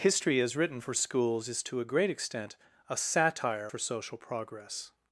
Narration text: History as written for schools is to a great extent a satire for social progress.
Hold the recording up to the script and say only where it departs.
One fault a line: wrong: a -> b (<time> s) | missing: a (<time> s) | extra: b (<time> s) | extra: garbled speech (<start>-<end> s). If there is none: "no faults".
no faults